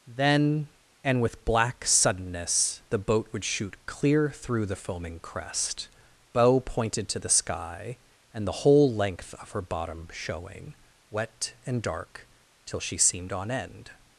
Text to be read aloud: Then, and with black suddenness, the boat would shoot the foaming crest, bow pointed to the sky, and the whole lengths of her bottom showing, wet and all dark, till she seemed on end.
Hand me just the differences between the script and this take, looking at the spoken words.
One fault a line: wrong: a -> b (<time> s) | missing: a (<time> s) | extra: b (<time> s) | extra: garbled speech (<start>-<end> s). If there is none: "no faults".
extra: clear through (3.9 s)
wrong: lengths -> length (8.9 s)
missing: all (11.8 s)